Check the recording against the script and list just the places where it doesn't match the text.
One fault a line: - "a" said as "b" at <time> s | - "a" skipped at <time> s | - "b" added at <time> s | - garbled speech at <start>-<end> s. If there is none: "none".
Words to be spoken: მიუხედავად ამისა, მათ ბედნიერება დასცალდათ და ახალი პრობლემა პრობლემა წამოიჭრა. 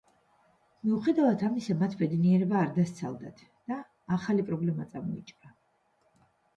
- "არ" added at 2.6 s
- "პრობლემა" skipped at 4.9 s